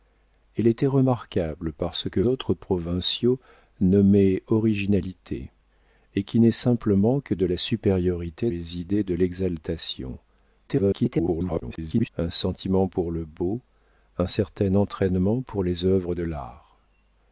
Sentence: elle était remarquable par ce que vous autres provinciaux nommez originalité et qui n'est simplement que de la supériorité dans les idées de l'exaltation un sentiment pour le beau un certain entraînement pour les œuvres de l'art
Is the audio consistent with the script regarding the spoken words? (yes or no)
no